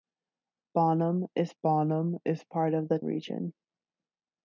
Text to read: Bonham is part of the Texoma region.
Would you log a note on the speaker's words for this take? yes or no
yes